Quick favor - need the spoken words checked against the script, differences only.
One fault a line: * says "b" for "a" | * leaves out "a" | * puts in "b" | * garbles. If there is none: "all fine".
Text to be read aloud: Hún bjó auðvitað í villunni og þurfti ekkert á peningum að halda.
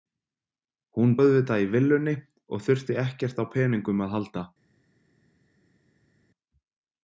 * leaves out "bjó"